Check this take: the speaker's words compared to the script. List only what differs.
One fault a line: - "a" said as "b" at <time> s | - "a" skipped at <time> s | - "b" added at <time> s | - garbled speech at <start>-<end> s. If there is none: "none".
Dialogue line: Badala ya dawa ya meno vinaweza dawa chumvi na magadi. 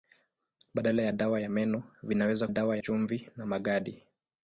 none